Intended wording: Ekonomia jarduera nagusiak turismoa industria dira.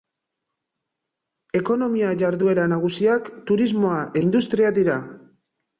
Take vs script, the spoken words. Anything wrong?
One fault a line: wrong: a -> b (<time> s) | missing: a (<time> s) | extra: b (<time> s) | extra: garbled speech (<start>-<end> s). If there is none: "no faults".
no faults